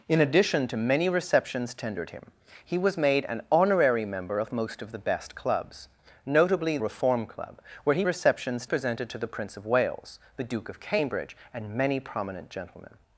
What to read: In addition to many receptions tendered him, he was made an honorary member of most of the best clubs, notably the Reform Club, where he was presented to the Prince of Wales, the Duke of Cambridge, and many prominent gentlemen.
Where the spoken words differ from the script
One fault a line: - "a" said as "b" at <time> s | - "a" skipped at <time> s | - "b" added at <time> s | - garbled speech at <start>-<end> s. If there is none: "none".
- "the" skipped at 6.8 s
- "was" said as "receptions" at 8.0 s